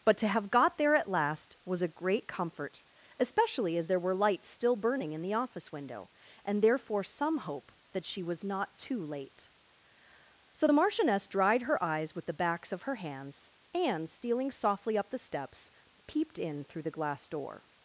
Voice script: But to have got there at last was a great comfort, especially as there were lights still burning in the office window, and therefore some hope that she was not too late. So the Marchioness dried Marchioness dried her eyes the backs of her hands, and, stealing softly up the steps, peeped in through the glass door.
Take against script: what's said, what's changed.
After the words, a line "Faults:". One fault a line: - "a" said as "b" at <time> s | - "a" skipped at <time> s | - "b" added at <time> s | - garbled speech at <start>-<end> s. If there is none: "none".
But to have got there at last was a great comfort, especially as there were lights still burning in the office window, and therefore some hope that she was not too late. So the Marchioness dried her eyes with the backs of her hands, and, stealing softly up the steps, peeped in through the glass door.
Faults:
- "Marchioness dried" skipped at 11.6 s
- "with" added at 12.1 s